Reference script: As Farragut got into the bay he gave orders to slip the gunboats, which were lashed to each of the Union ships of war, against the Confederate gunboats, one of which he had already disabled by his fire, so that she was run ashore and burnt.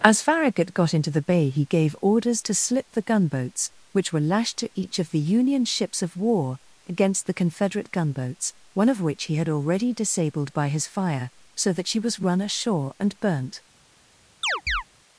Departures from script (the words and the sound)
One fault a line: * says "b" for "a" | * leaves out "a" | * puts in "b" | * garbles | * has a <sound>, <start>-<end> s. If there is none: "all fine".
* has a chirp, 14.4-14.8 s